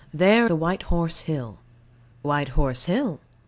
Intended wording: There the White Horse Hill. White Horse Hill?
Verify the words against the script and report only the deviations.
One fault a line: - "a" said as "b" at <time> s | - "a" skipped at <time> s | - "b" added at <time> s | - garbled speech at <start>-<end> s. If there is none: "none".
none